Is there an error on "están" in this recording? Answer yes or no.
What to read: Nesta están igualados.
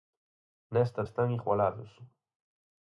no